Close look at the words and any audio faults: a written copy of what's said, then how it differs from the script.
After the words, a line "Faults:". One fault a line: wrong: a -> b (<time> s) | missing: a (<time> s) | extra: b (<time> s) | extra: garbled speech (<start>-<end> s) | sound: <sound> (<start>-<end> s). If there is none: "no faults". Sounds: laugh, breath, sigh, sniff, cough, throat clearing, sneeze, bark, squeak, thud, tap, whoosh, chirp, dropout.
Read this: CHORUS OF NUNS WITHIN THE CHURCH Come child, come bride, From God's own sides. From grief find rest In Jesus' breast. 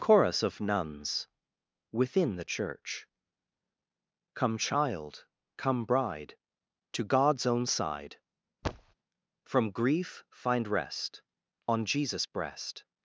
CHORUS OF NUNS WITHIN THE CHURCH Come child, come bride, To God's own side. From grief find rest On Jesus' breast.
Faults:
wrong: From -> To (6.9 s)
wrong: sides -> side (7.7 s)
sound: thud (8.6-8.9 s)
wrong: In -> On (11.7 s)